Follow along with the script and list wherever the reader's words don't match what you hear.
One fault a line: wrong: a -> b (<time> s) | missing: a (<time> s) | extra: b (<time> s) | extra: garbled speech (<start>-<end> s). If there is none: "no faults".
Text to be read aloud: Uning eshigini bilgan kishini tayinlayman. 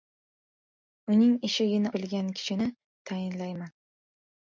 no faults